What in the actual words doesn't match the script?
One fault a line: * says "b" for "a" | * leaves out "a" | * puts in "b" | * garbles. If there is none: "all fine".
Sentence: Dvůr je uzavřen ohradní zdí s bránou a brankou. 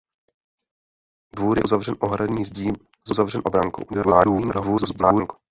* says "uzavřen" for "bránou"
* garbles